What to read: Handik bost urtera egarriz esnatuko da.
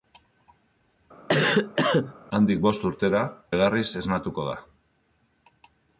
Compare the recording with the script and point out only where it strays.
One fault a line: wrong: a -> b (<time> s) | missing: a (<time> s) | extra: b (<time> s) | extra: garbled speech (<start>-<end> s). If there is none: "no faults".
no faults